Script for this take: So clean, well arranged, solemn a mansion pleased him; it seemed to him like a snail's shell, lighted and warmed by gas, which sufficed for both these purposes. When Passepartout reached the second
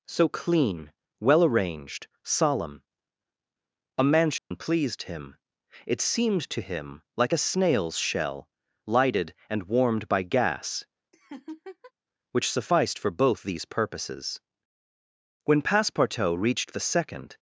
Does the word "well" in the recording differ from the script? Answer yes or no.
no